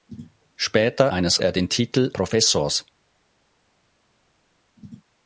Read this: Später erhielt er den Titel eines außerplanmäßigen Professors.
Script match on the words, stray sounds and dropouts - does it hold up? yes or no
no